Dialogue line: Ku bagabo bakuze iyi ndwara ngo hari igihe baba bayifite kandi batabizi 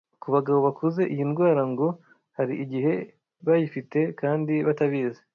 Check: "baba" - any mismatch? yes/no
yes